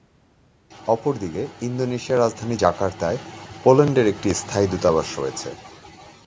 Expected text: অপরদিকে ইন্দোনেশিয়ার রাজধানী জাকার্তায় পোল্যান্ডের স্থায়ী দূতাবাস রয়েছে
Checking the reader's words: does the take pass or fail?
fail